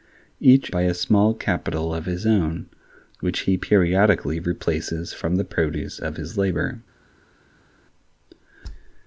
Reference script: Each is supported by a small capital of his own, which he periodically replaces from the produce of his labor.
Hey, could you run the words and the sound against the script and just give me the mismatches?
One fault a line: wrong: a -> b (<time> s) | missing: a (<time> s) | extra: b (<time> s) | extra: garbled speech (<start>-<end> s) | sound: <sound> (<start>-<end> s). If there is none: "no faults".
missing: is supported (0.7 s)